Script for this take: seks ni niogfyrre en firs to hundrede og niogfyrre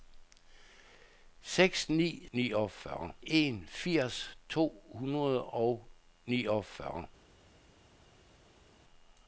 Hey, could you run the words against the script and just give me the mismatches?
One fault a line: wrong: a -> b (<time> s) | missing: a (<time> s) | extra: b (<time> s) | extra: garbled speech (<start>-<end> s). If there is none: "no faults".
no faults